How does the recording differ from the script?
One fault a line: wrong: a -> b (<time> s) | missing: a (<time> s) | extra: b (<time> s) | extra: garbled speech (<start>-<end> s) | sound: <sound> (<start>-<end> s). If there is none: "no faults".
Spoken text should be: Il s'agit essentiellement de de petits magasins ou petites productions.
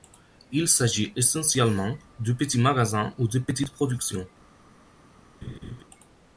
missing: de (2.3 s)
extra: de (3.3 s)
sound: laugh (5.4-5.8 s)